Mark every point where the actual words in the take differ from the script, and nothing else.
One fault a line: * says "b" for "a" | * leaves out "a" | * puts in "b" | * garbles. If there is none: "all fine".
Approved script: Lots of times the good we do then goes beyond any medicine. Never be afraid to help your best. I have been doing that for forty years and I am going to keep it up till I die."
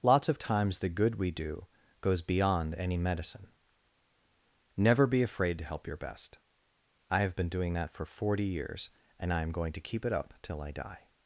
* leaves out "then"